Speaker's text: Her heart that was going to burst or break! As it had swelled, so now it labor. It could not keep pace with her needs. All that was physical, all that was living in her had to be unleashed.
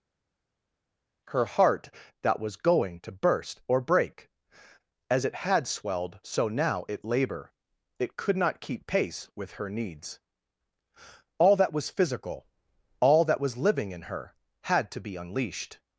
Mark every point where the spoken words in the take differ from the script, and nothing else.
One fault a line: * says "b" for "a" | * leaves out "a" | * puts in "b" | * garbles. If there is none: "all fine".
all fine